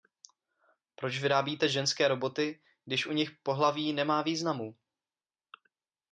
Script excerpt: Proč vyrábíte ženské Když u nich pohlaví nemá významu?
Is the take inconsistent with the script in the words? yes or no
yes